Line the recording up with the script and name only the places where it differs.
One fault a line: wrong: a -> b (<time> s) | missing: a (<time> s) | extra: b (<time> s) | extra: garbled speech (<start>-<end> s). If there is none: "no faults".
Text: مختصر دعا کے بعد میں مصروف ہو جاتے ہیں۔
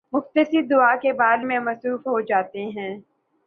no faults